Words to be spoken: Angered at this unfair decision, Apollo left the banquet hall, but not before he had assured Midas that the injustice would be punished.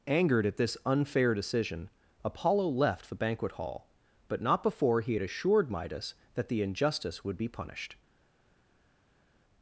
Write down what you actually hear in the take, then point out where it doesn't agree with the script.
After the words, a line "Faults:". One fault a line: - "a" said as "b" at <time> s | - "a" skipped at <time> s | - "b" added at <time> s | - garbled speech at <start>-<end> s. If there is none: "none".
Angered at this unfair decision, Apollo left the banquet hall, but not before he had assured Midas that the injustice would be punished.
Faults:
none